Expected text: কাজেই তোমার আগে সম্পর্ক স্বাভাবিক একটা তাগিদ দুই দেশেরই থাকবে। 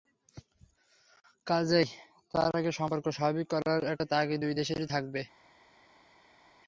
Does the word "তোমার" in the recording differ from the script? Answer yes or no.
yes